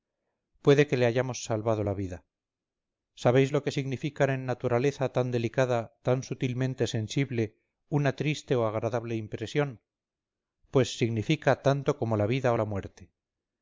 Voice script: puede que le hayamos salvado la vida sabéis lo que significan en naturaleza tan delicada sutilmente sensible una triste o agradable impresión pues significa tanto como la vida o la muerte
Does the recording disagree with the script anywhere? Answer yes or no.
yes